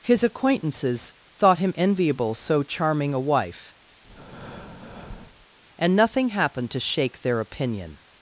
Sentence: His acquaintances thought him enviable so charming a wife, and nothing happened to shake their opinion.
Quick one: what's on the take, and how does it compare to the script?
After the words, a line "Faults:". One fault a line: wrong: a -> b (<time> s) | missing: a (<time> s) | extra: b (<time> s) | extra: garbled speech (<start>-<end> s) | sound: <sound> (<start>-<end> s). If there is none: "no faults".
His acquaintances thought him enviable so charming a wife, and nothing happened to shake their opinion.
Faults:
sound: breath (4.0-5.5 s)